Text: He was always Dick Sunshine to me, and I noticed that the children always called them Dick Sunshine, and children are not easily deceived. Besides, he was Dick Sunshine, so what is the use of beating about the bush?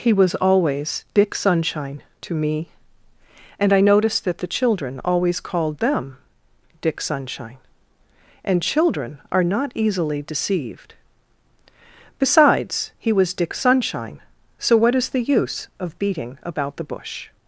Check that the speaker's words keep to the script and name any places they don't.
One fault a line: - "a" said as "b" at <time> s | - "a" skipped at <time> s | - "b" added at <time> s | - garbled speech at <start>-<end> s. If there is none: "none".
none